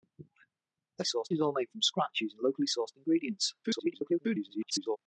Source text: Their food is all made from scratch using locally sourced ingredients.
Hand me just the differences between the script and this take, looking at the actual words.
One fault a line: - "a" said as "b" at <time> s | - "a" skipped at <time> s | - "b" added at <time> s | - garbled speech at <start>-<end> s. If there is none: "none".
- "food" said as "sourced" at 1.0 s
- garbled speech at 3.6-5.0 s